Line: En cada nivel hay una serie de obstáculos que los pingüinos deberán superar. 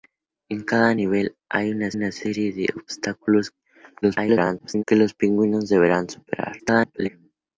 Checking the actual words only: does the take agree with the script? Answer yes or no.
no